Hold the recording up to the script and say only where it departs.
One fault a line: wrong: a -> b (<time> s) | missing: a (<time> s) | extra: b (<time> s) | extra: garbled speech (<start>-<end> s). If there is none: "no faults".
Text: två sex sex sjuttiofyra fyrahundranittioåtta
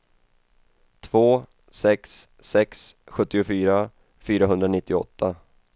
no faults